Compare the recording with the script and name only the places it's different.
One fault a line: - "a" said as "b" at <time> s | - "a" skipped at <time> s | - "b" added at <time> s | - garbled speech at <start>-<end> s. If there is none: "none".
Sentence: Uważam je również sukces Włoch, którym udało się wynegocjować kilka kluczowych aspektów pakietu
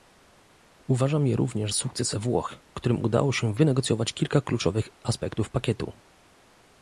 none